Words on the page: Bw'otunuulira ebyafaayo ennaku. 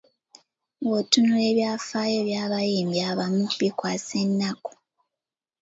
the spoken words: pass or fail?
fail